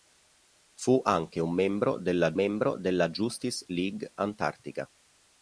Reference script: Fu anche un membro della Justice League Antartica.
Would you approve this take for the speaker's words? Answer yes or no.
no